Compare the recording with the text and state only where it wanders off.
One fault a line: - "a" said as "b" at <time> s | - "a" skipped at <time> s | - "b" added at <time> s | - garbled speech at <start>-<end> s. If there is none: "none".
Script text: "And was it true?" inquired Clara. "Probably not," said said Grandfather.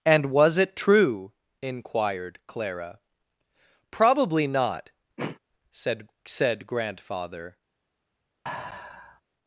none